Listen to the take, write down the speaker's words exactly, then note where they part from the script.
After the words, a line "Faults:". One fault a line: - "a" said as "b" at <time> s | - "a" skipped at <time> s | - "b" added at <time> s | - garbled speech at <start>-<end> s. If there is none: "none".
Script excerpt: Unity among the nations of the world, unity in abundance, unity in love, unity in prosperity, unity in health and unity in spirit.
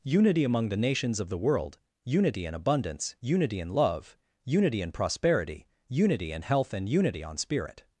Unity among the nations of the world, unity in abundance, unity in love, unity in prosperity, unity in health and unity on spirit.
Faults:
- "in" said as "on" at 7.2 s